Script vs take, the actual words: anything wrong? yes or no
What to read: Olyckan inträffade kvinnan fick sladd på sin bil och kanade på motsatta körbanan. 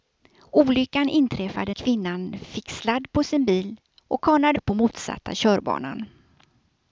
no